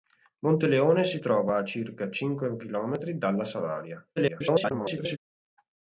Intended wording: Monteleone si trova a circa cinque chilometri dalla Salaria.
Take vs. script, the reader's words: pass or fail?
fail